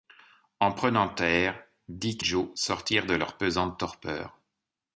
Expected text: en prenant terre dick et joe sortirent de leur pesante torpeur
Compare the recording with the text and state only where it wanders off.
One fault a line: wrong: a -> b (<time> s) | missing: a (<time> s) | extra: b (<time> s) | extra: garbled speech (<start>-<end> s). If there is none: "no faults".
missing: et (2.2 s)